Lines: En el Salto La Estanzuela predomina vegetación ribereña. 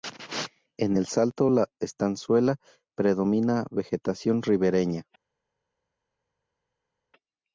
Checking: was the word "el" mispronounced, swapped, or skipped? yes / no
no